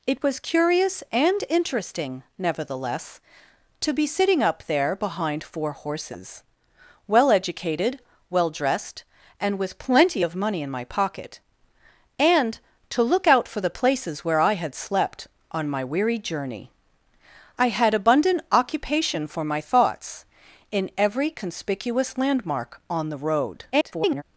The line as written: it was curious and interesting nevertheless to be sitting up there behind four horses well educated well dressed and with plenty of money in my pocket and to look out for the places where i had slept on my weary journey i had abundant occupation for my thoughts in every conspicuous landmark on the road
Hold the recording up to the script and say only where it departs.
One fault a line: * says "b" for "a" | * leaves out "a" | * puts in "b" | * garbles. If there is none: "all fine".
* garbles